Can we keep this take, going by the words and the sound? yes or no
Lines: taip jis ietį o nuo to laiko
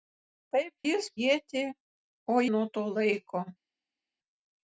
yes